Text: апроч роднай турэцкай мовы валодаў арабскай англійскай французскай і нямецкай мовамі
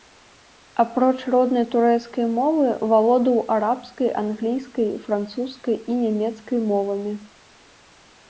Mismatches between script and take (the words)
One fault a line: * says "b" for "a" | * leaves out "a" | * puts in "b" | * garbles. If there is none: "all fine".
all fine